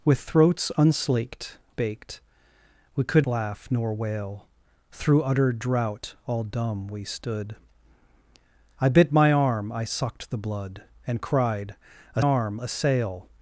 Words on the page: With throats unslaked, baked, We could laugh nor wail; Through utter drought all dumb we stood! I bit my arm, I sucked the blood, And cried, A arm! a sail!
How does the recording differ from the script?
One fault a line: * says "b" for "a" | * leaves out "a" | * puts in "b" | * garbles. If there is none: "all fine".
all fine